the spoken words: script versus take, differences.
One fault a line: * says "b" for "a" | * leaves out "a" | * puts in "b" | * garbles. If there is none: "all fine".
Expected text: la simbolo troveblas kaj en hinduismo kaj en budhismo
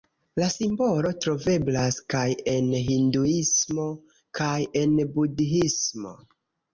all fine